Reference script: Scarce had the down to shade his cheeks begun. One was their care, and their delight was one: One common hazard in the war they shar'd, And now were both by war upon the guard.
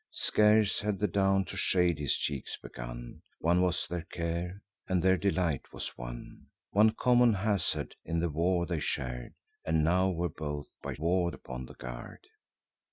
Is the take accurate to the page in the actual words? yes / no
yes